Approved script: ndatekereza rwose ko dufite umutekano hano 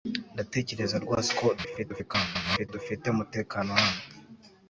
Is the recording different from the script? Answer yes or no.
yes